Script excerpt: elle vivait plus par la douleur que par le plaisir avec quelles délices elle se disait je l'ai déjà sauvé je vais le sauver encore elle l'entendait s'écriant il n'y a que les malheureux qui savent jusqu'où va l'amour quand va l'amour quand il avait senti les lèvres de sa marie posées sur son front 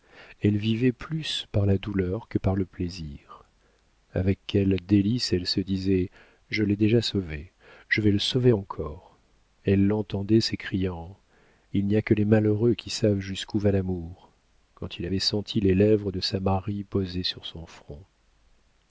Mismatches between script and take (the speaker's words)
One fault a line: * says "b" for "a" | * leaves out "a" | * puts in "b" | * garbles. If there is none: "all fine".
* leaves out "va l'amour quand"